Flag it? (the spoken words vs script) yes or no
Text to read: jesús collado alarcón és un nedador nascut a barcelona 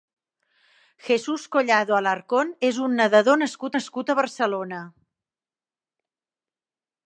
yes